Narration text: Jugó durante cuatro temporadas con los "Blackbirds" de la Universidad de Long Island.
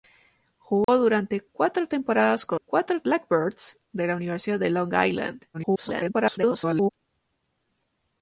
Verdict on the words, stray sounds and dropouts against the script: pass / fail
fail